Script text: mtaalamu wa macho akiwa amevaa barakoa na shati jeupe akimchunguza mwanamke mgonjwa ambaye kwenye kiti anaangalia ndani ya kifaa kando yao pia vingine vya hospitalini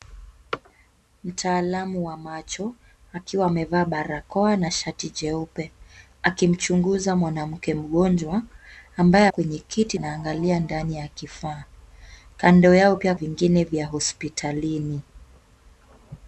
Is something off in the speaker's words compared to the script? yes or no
no